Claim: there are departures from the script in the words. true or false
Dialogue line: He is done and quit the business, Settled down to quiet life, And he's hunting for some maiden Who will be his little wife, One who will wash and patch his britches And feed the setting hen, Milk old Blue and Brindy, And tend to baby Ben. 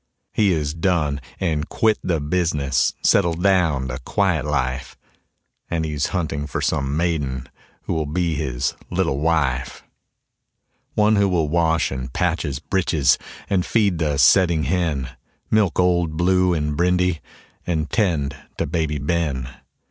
false